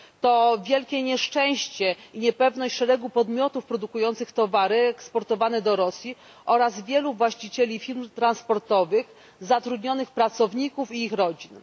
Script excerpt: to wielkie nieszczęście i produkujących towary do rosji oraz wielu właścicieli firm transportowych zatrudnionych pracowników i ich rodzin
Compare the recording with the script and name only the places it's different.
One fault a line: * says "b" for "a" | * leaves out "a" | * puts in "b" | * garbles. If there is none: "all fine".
* puts in "niepewność szeregu podmiotów"
* puts in "eksportowane"